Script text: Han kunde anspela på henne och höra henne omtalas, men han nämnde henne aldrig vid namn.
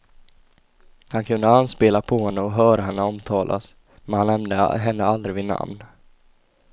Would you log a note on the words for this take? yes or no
no